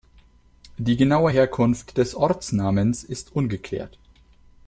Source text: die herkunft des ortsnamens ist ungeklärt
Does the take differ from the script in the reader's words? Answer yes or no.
yes